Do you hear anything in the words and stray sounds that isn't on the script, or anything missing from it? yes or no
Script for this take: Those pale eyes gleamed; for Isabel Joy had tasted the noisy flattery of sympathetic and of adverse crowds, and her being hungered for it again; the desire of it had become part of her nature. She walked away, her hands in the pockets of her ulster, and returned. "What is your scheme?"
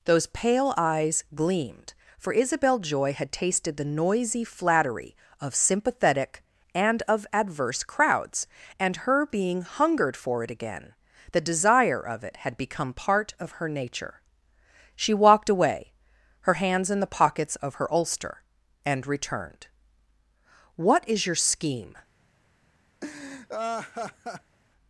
yes